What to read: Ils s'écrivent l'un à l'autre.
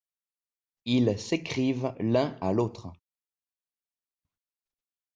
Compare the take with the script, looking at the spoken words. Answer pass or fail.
pass